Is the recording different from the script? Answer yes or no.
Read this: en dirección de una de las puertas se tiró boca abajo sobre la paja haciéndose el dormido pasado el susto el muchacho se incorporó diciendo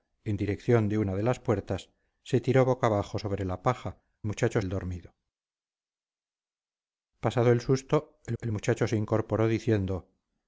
yes